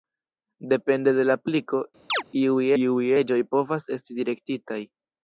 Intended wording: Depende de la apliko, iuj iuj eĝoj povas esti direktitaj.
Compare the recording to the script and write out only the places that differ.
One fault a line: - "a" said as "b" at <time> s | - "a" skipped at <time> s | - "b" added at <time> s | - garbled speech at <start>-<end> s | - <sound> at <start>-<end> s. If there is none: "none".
- chirp at 2.1-2.2 s